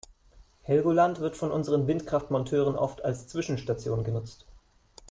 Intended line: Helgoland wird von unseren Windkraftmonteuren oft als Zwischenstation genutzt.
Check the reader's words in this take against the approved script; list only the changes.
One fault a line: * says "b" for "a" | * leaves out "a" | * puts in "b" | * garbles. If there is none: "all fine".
all fine